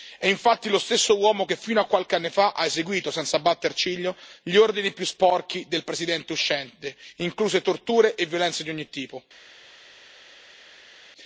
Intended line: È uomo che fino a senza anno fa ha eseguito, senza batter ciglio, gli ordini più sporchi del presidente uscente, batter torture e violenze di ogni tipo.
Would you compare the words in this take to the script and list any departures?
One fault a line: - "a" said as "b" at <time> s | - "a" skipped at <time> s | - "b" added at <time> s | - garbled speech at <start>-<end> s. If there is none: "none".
- "infatti lo stesso" added at 0.3 s
- "senza" said as "qualche" at 1.9 s
- "batter" said as "incluse" at 7.2 s